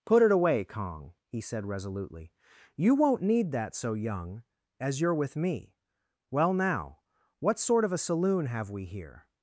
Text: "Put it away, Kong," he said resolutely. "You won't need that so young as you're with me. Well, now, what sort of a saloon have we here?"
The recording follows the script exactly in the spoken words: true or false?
true